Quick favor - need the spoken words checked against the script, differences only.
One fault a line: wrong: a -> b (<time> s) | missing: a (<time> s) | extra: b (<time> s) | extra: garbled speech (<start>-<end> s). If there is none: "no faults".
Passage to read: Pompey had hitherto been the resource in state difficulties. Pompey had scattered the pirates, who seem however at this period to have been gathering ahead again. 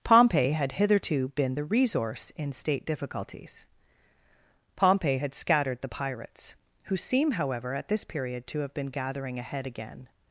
no faults